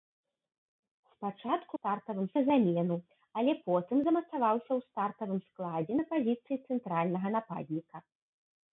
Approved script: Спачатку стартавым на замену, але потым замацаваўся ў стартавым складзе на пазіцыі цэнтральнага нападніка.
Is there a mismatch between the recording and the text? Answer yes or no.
no